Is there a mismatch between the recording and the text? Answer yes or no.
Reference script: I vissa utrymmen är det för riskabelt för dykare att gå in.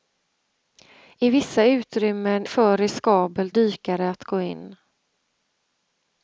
yes